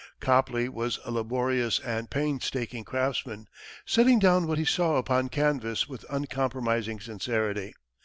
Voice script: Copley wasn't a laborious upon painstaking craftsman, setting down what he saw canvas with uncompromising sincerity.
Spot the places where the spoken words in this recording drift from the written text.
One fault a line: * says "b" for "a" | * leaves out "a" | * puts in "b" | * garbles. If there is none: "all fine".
* says "was" for "wasn't"
* says "and" for "upon"
* puts in "upon"